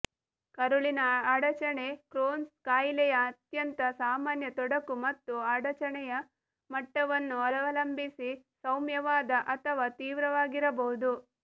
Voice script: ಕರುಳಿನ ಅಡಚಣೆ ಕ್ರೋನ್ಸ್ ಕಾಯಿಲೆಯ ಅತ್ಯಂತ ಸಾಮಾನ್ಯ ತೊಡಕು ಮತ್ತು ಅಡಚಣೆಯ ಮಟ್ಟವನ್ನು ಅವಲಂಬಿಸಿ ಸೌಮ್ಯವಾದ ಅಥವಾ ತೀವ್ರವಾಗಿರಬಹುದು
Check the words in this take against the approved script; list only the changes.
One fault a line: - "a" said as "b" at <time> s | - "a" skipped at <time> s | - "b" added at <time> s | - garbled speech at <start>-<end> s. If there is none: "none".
none